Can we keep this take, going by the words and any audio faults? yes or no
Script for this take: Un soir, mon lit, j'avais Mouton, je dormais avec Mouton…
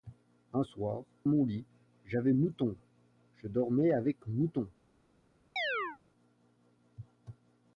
no